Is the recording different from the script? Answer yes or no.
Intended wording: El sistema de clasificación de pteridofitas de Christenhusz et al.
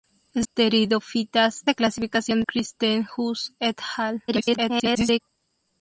yes